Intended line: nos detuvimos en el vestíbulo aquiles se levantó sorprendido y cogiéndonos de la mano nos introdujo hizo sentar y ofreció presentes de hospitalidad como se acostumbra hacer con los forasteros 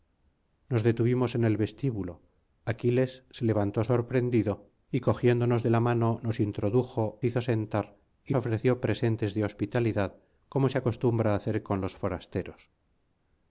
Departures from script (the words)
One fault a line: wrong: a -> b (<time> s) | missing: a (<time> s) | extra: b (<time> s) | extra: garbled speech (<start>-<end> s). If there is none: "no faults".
no faults